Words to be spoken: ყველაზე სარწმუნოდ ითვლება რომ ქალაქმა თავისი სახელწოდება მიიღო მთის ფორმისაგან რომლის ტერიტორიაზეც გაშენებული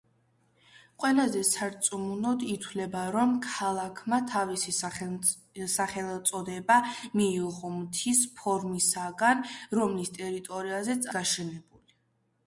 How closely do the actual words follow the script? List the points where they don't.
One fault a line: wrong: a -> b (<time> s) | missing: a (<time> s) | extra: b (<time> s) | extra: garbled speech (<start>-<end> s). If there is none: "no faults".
no faults